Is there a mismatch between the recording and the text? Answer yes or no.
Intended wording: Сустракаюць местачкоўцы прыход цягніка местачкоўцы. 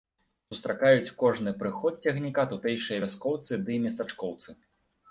yes